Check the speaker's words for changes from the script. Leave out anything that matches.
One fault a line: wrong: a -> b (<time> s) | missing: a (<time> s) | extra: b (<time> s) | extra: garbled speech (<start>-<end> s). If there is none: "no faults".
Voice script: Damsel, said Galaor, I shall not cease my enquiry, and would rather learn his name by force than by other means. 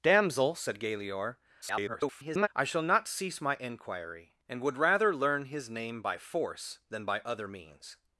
extra: garbled speech (1.6-2.5 s)